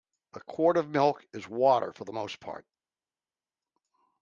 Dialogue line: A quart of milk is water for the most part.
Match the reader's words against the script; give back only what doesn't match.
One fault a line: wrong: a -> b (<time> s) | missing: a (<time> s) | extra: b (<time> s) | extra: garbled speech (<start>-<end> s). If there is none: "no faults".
no faults